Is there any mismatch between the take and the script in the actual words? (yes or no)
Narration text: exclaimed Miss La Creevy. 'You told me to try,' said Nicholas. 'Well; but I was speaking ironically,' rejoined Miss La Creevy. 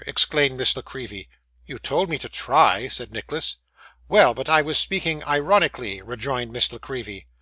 no